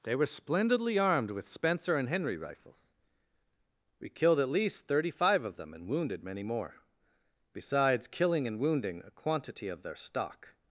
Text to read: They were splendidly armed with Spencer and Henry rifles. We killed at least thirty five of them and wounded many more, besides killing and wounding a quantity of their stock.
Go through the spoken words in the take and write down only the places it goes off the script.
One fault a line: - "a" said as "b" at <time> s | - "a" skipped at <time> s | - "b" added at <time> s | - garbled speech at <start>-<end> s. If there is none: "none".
none